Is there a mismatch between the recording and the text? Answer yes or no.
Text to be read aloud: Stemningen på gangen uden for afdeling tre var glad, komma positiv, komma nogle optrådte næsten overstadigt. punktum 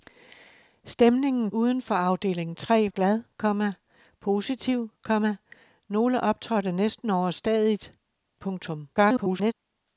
yes